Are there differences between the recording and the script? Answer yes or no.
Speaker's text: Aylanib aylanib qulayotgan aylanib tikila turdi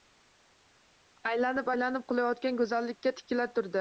yes